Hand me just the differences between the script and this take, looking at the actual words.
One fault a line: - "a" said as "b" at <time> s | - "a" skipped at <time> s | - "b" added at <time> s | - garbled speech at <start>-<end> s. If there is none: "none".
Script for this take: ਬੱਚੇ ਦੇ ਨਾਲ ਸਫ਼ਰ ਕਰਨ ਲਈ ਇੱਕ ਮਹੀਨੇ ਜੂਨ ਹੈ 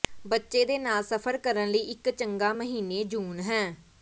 - "ਚੰਗਾ" added at 2.1 s